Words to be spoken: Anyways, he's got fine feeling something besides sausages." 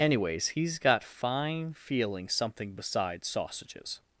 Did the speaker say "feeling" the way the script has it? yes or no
yes